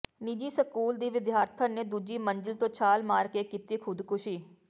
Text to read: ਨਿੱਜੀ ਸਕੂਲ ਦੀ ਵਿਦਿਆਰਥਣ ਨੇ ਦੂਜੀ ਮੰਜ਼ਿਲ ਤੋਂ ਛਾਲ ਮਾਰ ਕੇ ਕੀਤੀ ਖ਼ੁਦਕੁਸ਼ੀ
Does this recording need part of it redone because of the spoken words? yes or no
no